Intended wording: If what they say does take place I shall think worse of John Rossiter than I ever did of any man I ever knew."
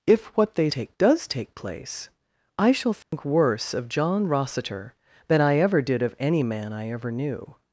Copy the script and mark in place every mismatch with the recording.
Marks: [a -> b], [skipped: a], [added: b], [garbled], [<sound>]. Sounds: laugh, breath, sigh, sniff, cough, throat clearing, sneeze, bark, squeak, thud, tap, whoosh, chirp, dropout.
If what they [say -> take] does take place I shall think [dropout] worse of John Rossiter than I ever did of any man I ever knew."